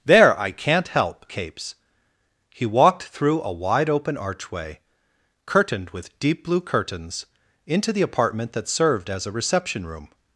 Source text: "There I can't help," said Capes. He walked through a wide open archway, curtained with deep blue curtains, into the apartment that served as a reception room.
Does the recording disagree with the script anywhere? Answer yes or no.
yes